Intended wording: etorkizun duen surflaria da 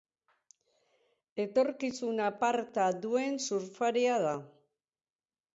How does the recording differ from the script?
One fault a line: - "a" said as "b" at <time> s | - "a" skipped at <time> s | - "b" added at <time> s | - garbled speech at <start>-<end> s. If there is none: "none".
- "aparta" added at 2.3 s